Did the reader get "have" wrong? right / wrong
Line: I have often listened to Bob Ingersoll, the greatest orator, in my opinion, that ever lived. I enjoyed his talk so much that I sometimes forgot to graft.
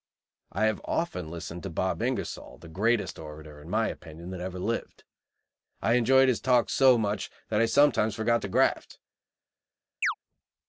right